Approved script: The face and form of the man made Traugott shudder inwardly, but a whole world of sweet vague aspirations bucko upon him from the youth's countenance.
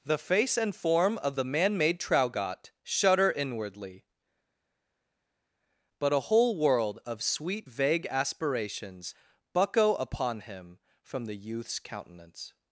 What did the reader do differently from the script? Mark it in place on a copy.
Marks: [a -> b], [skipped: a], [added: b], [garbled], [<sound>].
The face and form of the man made Traugott shudder inwardly, but a whole world of sweet vague aspirations bucko upon him from the youth's countenance.